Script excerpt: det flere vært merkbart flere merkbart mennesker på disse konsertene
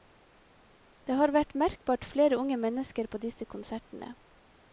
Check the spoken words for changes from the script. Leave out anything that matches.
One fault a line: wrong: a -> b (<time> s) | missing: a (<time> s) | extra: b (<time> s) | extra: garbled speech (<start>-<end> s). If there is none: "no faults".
wrong: flere -> har (1.2 s)
wrong: merkbart -> unge (2.4 s)